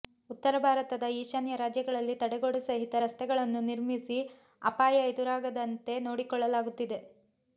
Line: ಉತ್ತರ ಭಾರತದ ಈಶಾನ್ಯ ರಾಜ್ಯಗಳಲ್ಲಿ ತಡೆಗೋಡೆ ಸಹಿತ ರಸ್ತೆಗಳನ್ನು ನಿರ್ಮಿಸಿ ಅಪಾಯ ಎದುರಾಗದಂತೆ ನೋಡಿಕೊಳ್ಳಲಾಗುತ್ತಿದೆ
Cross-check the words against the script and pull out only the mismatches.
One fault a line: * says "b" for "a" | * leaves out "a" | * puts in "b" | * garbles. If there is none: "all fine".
all fine